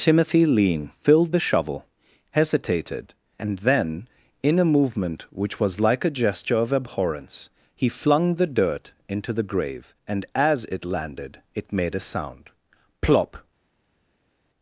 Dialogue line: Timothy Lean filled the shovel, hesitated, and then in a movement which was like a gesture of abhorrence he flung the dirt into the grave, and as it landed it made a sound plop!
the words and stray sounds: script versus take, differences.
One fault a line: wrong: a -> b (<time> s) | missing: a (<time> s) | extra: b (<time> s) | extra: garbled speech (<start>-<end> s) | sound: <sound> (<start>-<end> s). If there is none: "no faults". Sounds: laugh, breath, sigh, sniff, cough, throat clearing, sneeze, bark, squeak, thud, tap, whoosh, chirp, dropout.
no faults